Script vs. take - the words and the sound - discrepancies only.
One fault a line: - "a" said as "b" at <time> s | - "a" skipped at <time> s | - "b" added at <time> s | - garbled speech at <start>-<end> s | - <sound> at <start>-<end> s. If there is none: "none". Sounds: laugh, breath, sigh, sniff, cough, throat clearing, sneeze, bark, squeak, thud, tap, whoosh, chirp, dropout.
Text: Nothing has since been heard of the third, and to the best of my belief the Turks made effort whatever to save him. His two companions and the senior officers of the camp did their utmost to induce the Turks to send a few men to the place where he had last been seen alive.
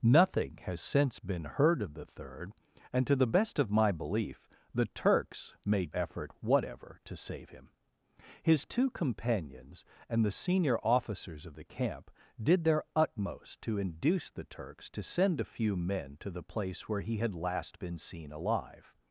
none